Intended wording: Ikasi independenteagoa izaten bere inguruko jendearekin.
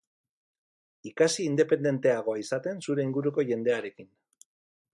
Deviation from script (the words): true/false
true